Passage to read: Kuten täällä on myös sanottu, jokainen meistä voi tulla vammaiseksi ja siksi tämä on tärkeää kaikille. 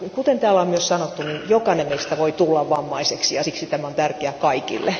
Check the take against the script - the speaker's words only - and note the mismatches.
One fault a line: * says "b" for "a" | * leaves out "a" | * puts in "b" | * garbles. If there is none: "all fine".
all fine